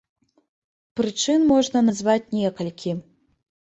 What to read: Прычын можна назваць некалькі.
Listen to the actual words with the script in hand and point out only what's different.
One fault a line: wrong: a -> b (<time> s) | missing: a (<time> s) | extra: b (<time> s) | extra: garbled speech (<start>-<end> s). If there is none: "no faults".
no faults